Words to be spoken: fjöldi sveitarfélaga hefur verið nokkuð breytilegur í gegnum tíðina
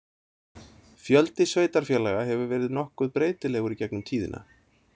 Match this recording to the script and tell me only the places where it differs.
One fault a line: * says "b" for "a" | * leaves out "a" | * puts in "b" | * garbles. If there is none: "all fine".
all fine